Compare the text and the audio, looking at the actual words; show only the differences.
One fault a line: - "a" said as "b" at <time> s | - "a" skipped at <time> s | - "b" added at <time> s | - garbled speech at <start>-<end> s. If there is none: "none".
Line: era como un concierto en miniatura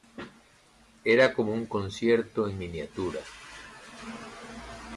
none